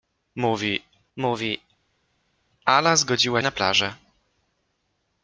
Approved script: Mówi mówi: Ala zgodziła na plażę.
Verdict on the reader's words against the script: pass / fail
pass